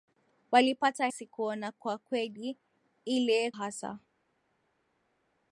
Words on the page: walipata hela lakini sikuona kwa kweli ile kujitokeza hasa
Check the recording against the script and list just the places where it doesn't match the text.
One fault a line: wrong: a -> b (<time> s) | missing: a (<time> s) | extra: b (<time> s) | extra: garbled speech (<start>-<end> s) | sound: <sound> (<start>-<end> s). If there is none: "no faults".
missing: hela lakini (1.1 s)
missing: kujitokeza (3.5 s)